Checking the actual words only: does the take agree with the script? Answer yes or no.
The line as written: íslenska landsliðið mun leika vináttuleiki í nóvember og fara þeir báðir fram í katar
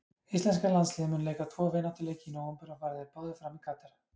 no